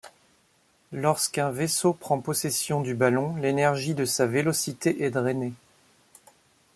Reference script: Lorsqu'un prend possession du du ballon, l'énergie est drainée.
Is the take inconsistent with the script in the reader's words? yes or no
yes